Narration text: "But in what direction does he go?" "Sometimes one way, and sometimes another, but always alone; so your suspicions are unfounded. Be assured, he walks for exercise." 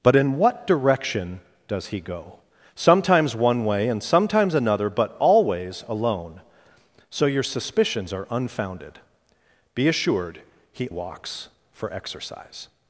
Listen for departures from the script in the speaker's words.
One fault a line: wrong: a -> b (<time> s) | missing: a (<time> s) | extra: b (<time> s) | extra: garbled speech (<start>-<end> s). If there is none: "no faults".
no faults